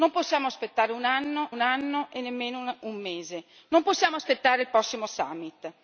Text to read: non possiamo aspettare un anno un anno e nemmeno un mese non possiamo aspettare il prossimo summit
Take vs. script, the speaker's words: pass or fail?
pass